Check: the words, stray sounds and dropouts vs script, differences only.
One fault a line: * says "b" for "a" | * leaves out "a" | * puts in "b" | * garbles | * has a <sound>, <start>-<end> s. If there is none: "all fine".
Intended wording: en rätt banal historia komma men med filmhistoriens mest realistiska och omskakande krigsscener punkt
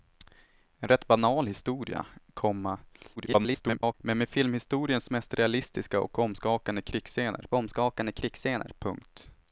* garbles
* puts in "omskakande krigsscener"